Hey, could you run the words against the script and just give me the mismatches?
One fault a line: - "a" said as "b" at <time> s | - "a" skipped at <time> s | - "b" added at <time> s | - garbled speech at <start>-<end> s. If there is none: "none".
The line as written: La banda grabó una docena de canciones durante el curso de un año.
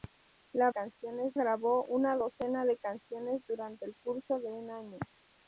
- "banda" said as "canciones" at 0.7 s